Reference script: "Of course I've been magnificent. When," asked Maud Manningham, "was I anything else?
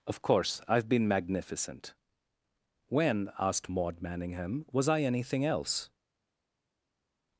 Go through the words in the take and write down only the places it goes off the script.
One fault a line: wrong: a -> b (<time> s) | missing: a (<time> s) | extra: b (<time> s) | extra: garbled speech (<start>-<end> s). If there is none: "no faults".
no faults